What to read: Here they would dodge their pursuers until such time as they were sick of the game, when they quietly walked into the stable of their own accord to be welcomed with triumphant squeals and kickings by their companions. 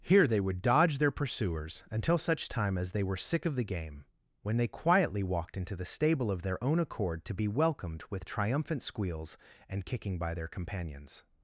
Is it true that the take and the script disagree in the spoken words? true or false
true